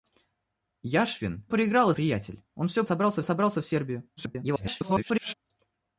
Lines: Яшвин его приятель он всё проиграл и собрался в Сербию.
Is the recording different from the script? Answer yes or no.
yes